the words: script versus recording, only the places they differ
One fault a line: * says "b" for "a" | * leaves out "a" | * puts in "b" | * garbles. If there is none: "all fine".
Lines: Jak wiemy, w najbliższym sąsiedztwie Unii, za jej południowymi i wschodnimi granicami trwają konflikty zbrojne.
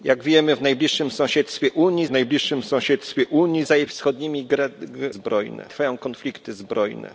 * puts in "najbliższym sąsiedztwie Unii"
* leaves out "południowymi"
* says "zbrojne" for "granicami"